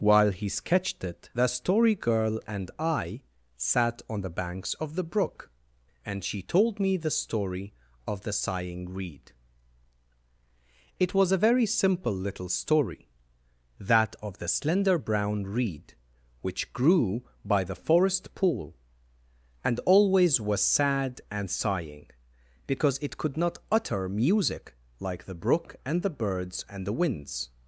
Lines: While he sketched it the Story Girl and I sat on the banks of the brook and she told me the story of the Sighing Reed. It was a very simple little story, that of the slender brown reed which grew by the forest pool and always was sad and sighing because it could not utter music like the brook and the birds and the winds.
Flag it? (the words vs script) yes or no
no